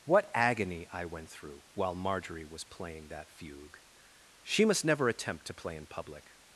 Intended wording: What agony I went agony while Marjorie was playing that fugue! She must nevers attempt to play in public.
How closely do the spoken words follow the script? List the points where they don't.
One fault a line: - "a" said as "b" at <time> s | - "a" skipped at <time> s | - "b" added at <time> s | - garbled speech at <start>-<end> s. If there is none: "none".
- "agony" said as "through" at 1.3 s
- "nevers" said as "never" at 4.8 s